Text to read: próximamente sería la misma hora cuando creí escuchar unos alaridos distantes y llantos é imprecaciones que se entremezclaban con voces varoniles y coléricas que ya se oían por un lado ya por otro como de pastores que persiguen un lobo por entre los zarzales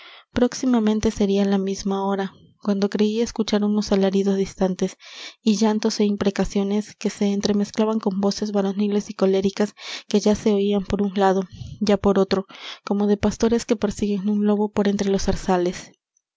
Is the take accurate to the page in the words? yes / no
yes